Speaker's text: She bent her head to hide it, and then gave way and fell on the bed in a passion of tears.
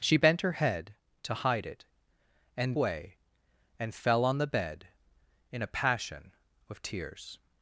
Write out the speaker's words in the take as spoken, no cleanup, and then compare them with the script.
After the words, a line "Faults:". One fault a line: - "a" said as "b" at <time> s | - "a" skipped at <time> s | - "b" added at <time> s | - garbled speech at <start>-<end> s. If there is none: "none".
She bent her head to hide it, and way and fell on the bed in a passion of tears.
Faults:
- "then gave" skipped at 2.8 s